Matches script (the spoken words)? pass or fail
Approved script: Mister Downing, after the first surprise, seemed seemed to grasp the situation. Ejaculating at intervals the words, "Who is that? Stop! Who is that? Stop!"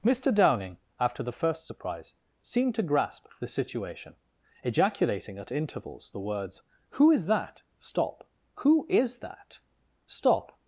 fail